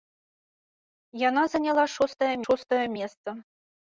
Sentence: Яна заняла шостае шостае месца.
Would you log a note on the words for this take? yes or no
no